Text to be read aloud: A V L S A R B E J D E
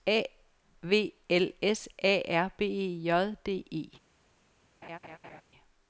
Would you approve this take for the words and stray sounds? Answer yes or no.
no